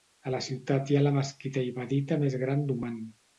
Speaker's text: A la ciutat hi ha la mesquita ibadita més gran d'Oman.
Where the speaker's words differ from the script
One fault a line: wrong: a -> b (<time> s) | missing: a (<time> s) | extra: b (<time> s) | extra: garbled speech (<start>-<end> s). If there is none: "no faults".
no faults